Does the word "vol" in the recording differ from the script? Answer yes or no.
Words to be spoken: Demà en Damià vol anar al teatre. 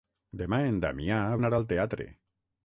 yes